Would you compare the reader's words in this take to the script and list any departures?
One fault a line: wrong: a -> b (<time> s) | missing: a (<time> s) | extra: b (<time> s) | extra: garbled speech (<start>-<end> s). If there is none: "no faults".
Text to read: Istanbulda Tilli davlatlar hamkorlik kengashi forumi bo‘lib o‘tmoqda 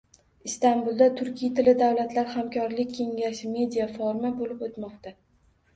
extra: Turkiy (1.2 s)
extra: media (3.6 s)